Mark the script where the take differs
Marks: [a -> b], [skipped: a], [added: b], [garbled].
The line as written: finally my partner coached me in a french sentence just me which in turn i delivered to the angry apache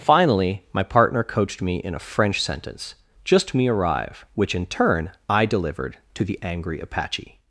finally my partner coached me in a french sentence just me [added: arrive] which in turn i delivered to the angry apache